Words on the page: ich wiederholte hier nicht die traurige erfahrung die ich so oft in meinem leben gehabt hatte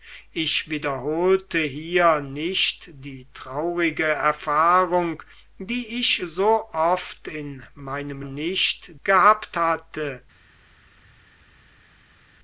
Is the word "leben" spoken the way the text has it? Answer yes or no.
no